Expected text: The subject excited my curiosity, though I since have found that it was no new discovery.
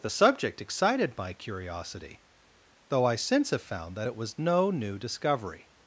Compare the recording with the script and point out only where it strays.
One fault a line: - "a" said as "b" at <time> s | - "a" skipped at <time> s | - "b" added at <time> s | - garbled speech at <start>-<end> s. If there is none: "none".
none